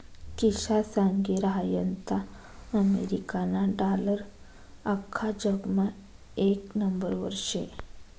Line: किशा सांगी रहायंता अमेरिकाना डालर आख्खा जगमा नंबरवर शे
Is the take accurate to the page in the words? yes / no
no